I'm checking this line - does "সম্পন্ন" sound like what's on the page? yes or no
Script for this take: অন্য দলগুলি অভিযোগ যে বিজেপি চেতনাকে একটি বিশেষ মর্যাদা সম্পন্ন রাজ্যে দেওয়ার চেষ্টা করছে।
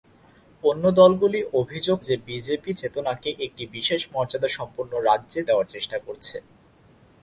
yes